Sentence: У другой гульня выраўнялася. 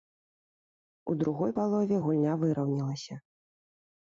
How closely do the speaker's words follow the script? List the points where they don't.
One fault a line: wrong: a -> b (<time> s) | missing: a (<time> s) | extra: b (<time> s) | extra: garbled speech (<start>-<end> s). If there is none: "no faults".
extra: палове (1.6 s)